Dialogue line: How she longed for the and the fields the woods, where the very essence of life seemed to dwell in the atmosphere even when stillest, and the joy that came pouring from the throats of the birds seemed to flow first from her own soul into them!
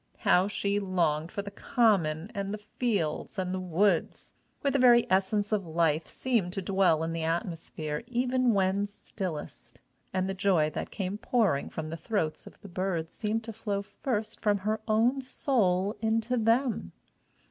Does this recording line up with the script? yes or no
no